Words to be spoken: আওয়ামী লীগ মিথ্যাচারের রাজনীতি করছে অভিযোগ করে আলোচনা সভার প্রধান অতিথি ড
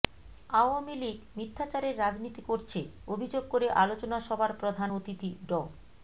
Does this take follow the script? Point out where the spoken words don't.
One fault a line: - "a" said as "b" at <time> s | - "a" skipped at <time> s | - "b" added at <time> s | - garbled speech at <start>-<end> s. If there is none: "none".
none